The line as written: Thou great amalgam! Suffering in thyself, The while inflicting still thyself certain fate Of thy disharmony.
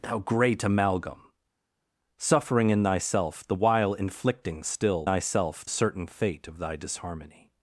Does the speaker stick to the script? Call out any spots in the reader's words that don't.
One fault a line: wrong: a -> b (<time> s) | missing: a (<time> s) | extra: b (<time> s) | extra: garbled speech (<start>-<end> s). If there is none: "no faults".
no faults